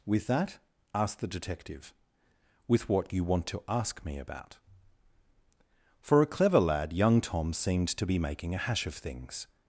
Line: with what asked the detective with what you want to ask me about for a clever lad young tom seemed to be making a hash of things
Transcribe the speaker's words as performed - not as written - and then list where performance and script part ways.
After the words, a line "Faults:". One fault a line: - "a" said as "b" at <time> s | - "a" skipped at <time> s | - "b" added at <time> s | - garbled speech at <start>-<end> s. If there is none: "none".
with that asked the detective with what you want to ask me about for a clever lad young tom seemed to be making a hash of things
Faults:
- "what" said as "that" at 0.3 s